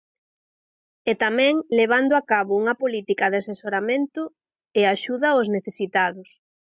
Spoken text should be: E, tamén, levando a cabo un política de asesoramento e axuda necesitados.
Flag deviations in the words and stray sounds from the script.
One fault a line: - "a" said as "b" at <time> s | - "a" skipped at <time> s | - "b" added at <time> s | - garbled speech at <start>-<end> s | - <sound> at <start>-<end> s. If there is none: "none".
- "un" said as "unha" at 2.6 s
- "aos" added at 5.3 s